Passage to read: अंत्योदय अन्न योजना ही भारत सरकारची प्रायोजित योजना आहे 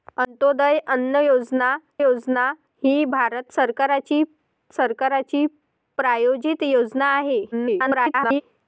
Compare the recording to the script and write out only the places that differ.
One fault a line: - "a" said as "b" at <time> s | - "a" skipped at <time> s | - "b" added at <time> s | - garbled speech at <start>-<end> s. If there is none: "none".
- "योजना" added at 2.0 s
- "सरकारची" added at 4.7 s
- garbled speech at 7.5-8.4 s